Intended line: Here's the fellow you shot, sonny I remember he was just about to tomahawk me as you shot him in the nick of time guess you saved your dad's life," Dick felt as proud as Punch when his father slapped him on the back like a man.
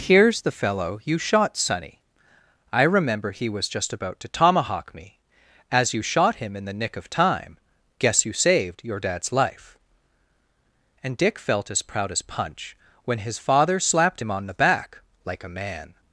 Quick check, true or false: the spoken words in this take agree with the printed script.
false